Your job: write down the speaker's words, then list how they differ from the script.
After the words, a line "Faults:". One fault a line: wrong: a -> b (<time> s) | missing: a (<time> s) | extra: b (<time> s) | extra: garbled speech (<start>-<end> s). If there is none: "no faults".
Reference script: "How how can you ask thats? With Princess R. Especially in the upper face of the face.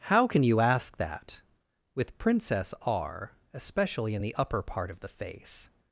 "How can you ask that? With Princess R. Especially in the upper part of the face.
Faults:
missing: how (0.3 s)
wrong: thats -> that (1.0 s)
wrong: face -> part (4.6 s)